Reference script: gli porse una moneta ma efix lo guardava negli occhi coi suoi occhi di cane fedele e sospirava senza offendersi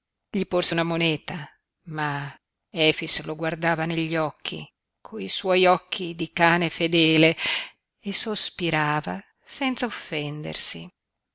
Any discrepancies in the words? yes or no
no